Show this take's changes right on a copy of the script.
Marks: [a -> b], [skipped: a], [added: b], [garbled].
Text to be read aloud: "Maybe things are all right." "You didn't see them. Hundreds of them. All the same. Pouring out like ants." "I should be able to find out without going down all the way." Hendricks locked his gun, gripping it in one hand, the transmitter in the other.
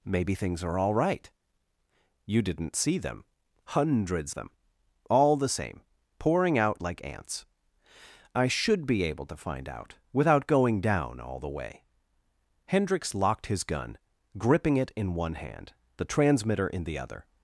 "Maybe things are all right." "You didn't see them. Hundreds [skipped: of] them. All the same. Pouring out like ants." "I should be able to find out without going down all the way." Hendricks locked his gun, gripping it in one hand, the transmitter in the other.